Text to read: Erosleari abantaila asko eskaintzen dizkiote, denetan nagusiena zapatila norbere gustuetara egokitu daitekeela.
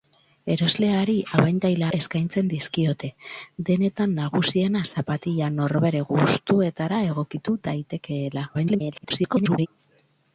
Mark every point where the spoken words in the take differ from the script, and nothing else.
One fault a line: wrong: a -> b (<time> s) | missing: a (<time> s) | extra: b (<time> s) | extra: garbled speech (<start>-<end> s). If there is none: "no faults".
missing: asko (1.9 s)
extra: garbled speech (8.5-9.7 s)